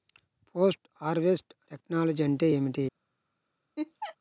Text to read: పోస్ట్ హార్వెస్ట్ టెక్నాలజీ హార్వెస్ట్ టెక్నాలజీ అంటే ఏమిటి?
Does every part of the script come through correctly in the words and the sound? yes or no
no